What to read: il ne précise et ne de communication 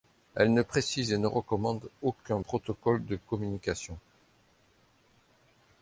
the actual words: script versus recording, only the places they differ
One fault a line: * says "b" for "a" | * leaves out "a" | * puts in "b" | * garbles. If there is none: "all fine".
* says "elle" for "il"
* puts in "recommande aucun protocole"